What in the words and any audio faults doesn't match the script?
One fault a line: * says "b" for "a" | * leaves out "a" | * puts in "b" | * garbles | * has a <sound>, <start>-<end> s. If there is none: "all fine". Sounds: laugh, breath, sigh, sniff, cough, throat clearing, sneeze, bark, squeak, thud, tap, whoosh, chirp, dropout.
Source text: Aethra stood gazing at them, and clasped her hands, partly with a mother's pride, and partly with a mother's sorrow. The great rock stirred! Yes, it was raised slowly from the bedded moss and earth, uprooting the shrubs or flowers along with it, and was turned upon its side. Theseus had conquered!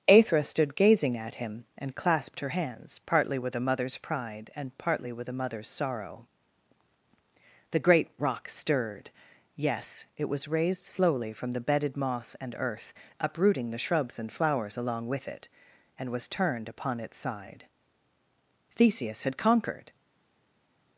* says "him" for "them"
* says "and" for "or"